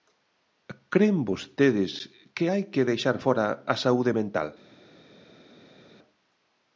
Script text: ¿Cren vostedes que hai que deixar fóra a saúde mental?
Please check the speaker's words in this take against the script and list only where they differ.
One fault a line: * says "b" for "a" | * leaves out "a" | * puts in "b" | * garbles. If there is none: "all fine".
all fine